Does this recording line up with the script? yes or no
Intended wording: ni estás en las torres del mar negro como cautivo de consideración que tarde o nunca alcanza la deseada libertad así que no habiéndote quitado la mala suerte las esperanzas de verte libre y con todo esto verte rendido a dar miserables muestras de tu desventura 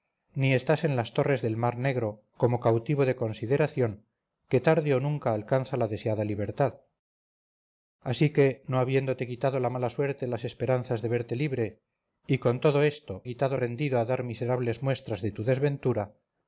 no